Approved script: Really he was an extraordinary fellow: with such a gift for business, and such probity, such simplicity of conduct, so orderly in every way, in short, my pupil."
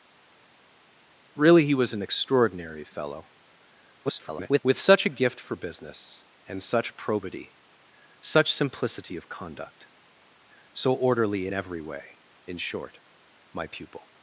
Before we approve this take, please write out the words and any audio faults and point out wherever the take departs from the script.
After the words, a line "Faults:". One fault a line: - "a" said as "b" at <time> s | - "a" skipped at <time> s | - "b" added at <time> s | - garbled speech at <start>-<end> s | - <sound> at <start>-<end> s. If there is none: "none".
Really he was an extraordinary fellow: [garbled] with such a gift for business, and such probity, such simplicity of conduct, so orderly in every way, in short, my pupil."
Faults:
- garbled speech at 4.0-4.6 s